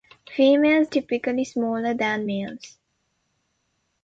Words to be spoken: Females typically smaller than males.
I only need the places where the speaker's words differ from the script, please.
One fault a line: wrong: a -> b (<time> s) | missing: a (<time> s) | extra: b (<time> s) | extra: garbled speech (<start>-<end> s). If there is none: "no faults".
no faults